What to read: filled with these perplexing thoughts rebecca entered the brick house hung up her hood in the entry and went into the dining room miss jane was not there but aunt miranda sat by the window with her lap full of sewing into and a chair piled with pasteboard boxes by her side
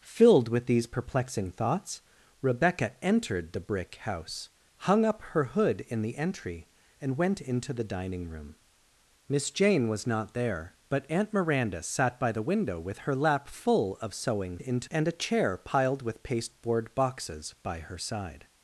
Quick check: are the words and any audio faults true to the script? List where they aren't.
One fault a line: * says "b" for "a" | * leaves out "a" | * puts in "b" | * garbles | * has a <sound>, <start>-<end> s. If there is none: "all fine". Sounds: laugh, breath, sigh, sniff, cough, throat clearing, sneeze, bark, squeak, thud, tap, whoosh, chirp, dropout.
all fine